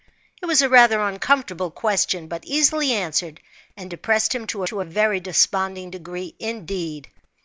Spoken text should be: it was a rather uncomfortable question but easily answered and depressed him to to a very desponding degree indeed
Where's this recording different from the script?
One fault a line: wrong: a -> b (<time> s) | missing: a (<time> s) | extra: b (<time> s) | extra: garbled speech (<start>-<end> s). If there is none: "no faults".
no faults